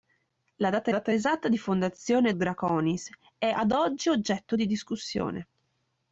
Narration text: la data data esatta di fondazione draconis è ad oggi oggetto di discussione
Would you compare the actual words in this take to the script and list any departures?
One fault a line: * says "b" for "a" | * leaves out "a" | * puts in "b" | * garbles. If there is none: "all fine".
all fine